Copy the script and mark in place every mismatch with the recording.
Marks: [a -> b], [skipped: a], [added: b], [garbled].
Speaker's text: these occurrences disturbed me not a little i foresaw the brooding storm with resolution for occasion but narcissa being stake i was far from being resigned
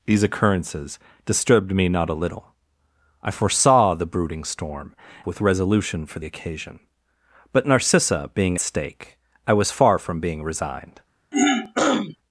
these occurrences disturbed me not a little i foresaw the brooding storm with resolution for occasion but narcissa being stake i was far from being resigned